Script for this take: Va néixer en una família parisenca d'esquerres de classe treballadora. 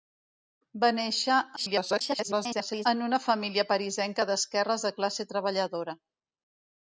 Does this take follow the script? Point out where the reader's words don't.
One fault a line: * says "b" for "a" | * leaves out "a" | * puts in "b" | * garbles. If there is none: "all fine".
* garbles